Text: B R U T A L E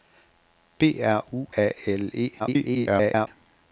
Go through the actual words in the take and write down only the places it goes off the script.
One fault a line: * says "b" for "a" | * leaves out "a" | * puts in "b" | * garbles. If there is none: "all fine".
* leaves out "T"
* garbles